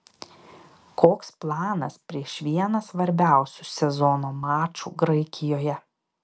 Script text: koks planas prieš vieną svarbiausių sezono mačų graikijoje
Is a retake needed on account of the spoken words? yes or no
no